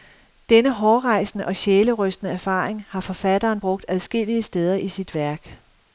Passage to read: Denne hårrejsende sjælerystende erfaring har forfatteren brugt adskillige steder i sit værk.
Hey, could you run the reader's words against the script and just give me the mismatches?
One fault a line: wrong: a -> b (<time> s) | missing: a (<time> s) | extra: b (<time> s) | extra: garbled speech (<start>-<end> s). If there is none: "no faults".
extra: og (1.4 s)